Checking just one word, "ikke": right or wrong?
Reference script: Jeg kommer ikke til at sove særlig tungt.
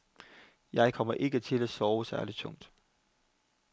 right